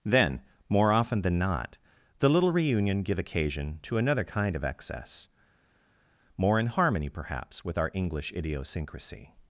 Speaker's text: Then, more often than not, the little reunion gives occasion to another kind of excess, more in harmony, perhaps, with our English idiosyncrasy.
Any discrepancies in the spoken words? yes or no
yes